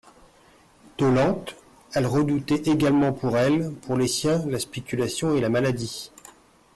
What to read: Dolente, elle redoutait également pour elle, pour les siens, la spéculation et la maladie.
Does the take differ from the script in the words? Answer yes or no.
no